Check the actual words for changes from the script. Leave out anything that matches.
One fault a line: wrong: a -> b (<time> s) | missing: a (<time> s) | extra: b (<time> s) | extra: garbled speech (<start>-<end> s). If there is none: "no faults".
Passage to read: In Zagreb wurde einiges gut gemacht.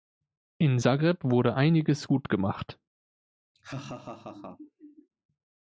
no faults